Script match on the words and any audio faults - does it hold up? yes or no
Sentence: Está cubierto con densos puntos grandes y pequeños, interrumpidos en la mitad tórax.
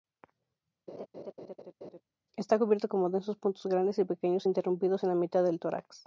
no